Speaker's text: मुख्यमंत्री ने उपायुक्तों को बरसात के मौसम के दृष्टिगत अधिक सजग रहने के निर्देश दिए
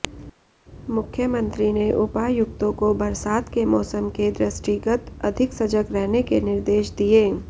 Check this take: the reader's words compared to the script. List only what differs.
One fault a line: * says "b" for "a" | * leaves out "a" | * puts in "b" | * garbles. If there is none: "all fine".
all fine